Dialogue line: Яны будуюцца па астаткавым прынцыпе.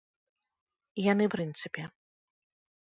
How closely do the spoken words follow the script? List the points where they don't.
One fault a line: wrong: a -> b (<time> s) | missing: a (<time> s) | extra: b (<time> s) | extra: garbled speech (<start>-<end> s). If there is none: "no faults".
missing: будуюцца па астаткавым (1.2 s)